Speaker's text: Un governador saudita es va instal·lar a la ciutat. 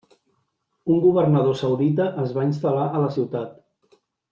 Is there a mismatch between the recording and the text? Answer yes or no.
no